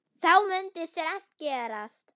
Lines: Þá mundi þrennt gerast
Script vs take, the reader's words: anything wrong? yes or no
no